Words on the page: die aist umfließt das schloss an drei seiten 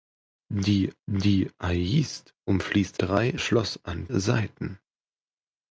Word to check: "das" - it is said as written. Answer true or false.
false